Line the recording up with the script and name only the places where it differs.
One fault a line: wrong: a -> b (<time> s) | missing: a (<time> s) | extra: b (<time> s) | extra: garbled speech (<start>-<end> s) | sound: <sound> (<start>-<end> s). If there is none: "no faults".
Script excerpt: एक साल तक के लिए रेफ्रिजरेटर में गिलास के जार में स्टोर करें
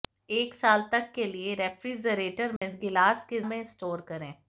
sound: dropout (2.6-2.6 s)
missing: जार (3.4 s)